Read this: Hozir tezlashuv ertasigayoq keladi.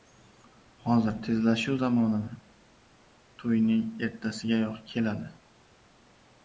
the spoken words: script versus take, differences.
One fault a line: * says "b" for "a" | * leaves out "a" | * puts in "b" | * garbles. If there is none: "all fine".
* puts in "zamonimi to‘yning"